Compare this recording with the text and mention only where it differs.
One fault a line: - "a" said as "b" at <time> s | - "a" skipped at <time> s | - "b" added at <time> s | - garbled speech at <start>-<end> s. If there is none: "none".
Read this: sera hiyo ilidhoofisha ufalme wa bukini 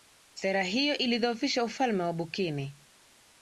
none